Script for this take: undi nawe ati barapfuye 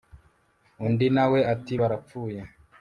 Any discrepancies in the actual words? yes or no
no